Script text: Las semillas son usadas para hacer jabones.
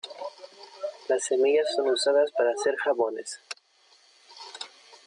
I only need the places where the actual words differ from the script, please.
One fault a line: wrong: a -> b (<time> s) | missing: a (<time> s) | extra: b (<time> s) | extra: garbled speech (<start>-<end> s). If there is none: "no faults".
no faults